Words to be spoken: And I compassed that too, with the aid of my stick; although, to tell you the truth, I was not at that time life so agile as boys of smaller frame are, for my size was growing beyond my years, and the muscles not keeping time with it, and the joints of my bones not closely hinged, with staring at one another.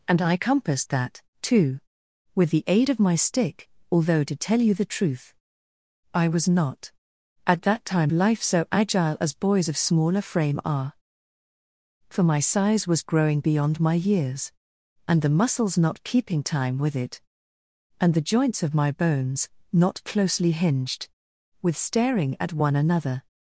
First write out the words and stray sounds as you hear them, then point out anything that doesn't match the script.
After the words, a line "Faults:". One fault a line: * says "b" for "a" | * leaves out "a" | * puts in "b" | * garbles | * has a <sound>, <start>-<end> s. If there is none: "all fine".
And I compassed that too, with the aid of my stick; although, to tell you the truth, I was not at that time life so agile as boys of smaller frame are, for my size was growing beyond my years, and the muscles not keeping time with it, and the joints of my bones not closely hinged, with staring at one another.
Faults:
all fine